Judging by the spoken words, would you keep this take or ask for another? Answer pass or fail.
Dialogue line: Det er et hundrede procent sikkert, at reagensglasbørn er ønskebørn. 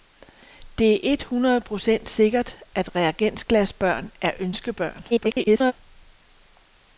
fail